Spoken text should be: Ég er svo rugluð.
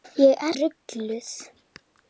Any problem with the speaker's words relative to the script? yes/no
yes